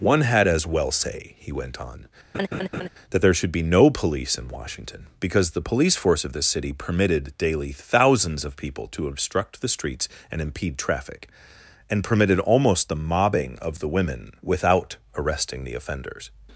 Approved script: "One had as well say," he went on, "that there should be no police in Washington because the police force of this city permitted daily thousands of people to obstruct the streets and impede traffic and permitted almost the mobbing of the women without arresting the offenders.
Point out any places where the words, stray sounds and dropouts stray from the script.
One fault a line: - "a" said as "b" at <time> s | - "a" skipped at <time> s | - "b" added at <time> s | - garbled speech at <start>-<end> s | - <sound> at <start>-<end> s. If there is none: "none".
- laugh at 2.3-2.9 s